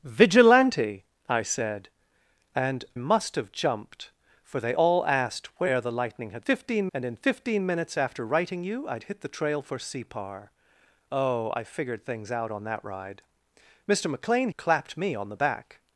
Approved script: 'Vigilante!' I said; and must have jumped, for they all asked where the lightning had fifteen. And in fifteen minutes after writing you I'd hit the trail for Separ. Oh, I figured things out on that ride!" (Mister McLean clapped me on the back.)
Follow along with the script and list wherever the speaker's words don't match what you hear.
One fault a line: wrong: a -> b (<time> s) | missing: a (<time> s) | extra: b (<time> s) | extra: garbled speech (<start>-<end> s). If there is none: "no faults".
no faults